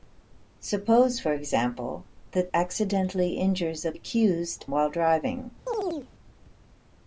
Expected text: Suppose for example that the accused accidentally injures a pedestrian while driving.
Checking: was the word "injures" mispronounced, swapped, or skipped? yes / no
no